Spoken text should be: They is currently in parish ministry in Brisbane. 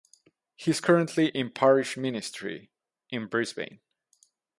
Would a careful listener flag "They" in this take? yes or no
yes